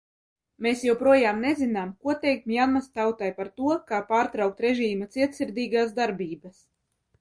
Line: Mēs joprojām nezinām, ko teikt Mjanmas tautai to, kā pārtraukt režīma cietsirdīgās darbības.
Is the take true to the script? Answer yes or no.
no